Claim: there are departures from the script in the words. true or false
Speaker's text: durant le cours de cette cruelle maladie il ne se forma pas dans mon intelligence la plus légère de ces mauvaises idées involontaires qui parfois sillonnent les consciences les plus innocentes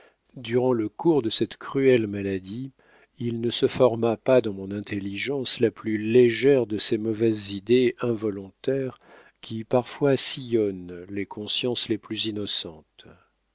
false